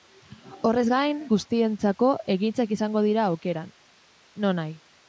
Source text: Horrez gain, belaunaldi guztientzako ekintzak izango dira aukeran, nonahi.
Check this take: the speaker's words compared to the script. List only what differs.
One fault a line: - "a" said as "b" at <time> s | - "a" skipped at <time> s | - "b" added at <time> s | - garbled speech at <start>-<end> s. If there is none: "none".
- "belaunaldi" skipped at 1.2 s